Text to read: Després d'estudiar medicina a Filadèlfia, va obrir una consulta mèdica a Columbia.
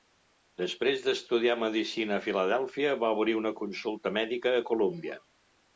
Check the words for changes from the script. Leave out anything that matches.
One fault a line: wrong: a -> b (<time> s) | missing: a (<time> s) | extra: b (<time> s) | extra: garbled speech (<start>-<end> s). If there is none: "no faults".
no faults